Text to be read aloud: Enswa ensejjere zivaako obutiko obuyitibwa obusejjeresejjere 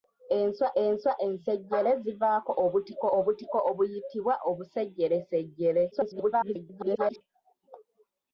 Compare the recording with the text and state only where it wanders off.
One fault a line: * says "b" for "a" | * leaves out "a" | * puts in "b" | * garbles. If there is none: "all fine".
* puts in "enswa"
* puts in "obutiko"
* garbles